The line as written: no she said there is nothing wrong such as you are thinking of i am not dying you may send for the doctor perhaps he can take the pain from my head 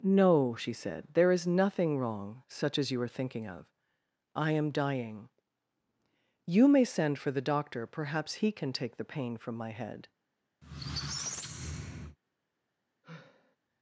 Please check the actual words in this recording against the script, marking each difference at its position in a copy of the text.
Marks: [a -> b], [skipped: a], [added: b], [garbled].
no she said there is nothing wrong such as you are thinking of i am [skipped: not] dying you may send for the doctor perhaps he can take the pain from my head